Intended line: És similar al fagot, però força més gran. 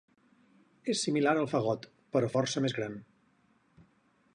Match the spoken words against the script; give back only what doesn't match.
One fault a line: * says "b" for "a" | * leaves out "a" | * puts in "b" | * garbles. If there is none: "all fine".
all fine